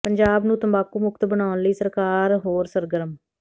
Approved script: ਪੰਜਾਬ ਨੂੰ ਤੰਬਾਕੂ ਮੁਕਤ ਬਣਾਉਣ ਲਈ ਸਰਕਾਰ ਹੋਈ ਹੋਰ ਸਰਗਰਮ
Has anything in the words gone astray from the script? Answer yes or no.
yes